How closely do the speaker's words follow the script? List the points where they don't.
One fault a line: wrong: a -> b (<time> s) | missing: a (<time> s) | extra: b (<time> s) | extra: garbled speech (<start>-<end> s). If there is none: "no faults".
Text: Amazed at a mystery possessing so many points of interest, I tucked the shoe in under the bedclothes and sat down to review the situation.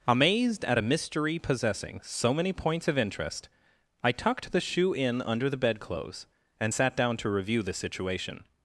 no faults